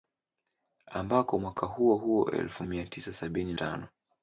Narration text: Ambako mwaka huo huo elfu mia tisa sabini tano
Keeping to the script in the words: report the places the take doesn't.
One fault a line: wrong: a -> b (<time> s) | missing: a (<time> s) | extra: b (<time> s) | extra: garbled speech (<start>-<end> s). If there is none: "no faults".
no faults